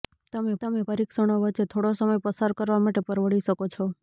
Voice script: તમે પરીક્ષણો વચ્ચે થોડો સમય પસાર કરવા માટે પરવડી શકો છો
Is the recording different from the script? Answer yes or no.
yes